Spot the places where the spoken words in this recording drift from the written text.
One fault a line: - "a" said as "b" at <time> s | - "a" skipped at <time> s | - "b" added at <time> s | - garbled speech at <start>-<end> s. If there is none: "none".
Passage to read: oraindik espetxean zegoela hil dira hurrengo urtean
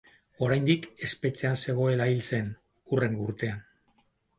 - "dira" said as "zen" at 2.3 s